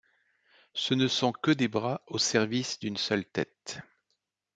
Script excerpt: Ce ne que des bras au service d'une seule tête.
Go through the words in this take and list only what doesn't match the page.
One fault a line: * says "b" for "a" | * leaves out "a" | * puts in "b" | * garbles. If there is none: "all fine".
* puts in "sont"